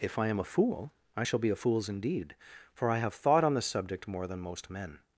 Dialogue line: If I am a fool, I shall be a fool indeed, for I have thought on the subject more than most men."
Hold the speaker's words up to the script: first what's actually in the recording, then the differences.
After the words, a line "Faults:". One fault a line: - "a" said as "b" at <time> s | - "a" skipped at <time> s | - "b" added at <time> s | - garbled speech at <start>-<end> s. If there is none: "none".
If I am a fool, I shall be a fools indeed, for I have thought on the subject more than most men."
Faults:
- "fool" said as "fools" at 1.5 s